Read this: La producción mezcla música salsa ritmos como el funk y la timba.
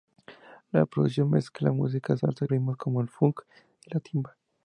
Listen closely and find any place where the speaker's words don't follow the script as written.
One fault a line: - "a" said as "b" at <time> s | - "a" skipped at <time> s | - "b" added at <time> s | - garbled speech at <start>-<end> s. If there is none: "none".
none